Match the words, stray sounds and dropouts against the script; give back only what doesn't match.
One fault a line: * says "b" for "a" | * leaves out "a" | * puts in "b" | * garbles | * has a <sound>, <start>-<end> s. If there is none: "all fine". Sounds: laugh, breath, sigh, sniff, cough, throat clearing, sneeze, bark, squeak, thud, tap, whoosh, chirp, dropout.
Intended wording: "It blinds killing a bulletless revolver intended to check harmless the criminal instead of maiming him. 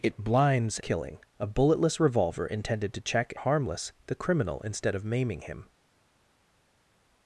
all fine